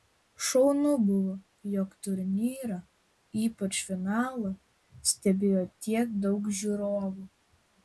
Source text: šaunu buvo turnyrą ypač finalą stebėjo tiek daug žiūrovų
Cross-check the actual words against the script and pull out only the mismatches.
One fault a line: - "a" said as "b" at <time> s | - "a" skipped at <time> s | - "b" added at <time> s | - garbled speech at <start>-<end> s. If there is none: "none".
- "jog" added at 1.7 s